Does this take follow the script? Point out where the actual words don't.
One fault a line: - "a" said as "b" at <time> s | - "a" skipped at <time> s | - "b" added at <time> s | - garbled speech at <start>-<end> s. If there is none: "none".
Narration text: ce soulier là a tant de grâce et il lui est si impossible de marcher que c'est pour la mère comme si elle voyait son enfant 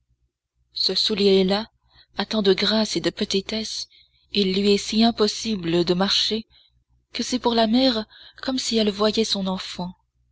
- "de petitesse" added at 3.0 s